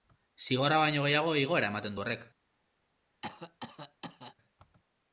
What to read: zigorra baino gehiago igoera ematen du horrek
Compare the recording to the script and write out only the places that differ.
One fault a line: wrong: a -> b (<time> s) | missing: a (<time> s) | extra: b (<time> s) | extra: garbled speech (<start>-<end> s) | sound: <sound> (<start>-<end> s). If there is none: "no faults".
sound: cough (3.2-4.4 s)